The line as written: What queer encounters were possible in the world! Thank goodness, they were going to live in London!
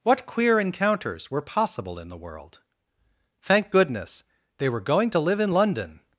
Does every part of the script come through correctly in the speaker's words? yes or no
yes